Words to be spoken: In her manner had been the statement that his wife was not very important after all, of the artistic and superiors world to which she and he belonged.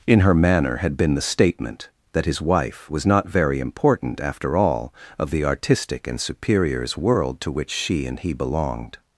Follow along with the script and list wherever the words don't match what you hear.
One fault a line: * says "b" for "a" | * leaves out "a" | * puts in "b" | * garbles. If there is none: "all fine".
all fine